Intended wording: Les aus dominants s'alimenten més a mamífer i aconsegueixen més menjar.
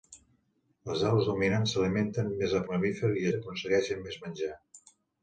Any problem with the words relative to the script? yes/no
no